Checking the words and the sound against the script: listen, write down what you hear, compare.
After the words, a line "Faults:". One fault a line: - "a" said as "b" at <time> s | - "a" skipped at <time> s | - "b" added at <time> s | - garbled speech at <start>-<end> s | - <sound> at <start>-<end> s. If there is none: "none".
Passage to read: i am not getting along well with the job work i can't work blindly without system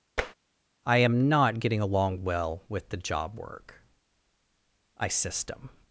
i am not getting along well with the job work i system
Faults:
- tap at 0.2-0.3 s
- "can't work blindly without" skipped at 5.1 s